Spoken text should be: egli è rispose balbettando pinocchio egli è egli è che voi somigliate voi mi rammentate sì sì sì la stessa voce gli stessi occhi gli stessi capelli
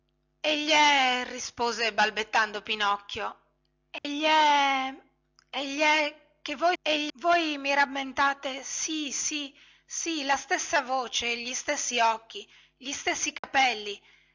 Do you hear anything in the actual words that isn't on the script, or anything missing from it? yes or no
yes